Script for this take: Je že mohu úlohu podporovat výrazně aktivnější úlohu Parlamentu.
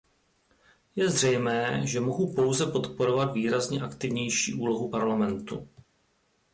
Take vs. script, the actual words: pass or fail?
fail